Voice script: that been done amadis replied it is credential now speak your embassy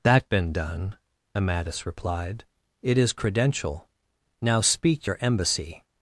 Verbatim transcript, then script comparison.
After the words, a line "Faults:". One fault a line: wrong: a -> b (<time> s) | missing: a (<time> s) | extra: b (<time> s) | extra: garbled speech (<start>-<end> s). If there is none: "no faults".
that been done amadis replied it is credential now speak your embassy
Faults:
no faults